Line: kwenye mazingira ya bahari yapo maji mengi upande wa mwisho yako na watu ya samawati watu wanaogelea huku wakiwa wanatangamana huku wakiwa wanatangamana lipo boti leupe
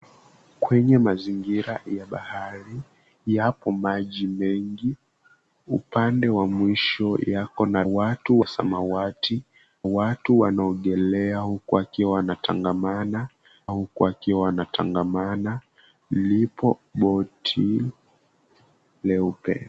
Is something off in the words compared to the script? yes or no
no